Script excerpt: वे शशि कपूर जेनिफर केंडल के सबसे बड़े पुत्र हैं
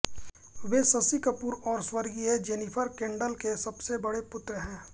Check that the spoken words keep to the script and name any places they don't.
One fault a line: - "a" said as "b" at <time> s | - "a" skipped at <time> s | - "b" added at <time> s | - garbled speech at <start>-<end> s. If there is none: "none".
- "और स्वर्गीय" added at 1.7 s